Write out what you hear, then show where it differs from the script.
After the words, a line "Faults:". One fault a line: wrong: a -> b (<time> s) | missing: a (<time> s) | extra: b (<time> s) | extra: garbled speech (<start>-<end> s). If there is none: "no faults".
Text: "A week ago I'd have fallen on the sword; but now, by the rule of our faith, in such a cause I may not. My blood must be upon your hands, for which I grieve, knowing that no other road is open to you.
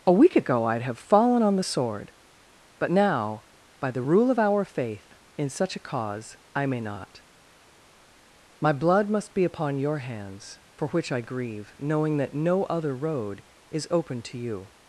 "A week ago I'd have fallen on the sword; but now, by the rule of our faith, in such a cause I may not. My blood must be upon your hands, for which I grieve, knowing that no other road is open to you.
Faults:
no faults